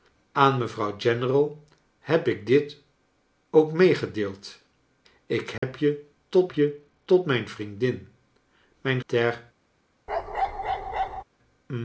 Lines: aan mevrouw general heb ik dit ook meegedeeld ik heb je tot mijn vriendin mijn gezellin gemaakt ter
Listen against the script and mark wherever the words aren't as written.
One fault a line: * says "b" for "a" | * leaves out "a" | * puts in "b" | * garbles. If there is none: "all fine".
* puts in "je tot"
* leaves out "gezellin gemaakt"